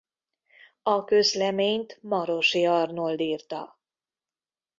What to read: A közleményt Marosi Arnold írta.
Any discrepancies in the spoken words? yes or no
no